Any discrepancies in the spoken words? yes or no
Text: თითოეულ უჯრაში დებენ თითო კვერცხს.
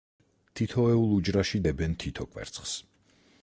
no